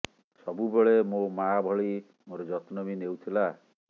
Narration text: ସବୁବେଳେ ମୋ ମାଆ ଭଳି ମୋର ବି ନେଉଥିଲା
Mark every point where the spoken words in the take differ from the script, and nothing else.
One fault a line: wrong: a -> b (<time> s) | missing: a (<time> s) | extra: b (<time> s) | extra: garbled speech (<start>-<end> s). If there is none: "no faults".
extra: ଯତ୍ନ (2.5 s)